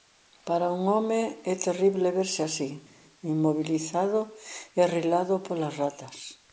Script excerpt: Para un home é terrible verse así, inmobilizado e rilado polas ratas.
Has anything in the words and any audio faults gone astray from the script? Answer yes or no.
no